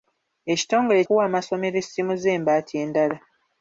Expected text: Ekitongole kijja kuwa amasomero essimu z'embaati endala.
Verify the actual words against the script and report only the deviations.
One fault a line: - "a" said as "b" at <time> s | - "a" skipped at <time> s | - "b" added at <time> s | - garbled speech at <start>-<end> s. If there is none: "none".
- "kijja" skipped at 1.0 s